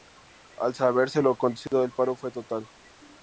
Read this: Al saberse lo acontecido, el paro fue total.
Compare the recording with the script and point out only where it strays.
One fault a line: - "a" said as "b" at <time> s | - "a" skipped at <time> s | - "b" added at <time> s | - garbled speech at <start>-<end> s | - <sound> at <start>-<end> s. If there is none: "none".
- dropout at 1.7-1.7 s